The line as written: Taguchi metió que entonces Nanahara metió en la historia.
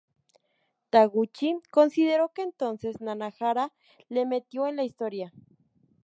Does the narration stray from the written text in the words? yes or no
yes